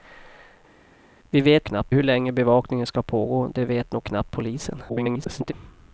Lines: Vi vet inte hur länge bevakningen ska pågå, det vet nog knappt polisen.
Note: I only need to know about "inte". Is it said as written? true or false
false